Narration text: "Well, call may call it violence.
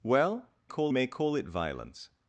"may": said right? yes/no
yes